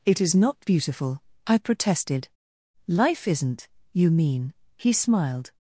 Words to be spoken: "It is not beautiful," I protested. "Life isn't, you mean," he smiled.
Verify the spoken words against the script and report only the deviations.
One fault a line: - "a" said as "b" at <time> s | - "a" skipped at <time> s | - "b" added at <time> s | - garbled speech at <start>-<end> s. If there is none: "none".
none